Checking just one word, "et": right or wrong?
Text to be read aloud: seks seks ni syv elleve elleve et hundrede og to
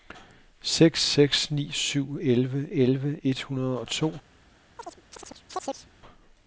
right